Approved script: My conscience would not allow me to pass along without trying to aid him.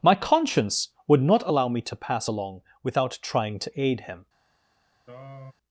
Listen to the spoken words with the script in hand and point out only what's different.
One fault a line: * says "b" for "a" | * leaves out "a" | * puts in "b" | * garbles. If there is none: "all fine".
all fine